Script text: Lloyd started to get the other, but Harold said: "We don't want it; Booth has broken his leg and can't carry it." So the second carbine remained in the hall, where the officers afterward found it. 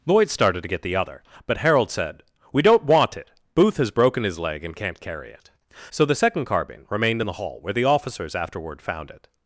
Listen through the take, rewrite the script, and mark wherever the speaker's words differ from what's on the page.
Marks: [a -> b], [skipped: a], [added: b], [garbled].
Lloyd started to get the other, but Harold said: "We don't want it; Booth has broken his leg and can't carry it." So the second carbine remained in the hall, where the officers afterward found it.